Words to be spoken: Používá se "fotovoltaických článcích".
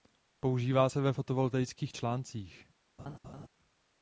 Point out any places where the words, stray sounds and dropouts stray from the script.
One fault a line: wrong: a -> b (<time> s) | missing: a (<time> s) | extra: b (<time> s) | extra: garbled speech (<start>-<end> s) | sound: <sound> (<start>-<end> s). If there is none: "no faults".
extra: ve (1.0 s)
sound: laugh (3.0-3.5 s)